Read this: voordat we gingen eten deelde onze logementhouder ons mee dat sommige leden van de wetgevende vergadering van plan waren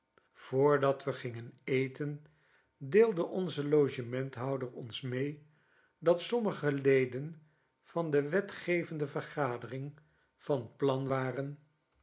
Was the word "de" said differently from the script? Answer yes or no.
no